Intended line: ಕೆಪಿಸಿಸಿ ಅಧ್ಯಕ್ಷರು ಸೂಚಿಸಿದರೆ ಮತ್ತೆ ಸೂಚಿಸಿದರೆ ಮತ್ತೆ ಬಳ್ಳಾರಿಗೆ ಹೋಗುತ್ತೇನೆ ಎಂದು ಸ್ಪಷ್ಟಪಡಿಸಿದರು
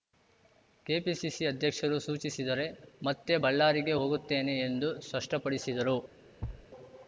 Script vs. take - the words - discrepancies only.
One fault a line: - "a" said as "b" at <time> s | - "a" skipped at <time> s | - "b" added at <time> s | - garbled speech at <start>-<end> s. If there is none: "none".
- "ಸೂಚಿಸಿದರೆ ಮತ್ತೆ" skipped at 3.4 s